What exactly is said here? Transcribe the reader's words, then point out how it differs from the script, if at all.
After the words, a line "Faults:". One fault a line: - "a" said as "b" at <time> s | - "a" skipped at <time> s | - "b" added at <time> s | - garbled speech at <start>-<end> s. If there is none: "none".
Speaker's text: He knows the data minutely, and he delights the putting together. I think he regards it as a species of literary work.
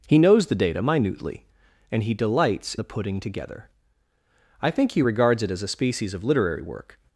He knows the data minutely, and he delights the putting together. I think he regards it as a species of literary work.
Faults:
none